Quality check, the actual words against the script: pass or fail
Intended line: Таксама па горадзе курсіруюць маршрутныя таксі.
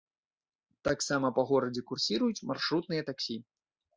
pass